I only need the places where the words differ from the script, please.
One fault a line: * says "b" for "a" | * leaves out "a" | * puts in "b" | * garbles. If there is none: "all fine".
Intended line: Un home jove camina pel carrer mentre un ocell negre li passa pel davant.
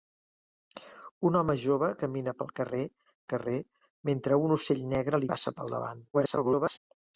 * puts in "carrer"
* leaves out "li"
* garbles